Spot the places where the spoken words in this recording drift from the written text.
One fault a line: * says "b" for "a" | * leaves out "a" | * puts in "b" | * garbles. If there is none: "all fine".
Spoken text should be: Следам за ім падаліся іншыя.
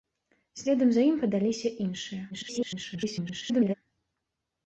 * garbles